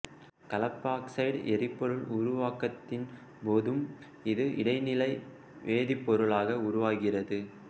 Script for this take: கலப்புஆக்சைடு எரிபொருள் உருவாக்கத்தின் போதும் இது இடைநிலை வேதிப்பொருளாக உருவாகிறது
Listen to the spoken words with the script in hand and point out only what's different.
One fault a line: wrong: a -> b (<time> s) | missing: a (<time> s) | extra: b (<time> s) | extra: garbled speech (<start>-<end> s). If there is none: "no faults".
no faults